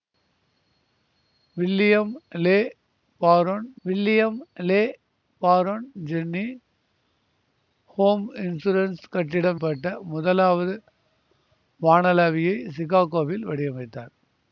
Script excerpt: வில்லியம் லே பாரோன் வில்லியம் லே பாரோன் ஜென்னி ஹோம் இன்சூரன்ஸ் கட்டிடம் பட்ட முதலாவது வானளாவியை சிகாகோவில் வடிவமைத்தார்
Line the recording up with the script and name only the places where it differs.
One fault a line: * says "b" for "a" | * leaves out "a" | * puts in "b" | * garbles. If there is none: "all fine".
all fine